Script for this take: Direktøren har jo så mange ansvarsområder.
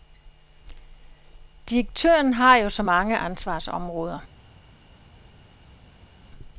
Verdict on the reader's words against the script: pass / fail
pass